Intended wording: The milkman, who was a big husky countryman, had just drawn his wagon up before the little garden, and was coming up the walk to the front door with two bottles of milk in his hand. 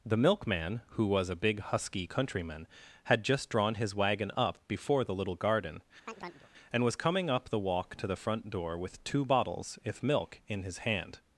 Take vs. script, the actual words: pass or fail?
fail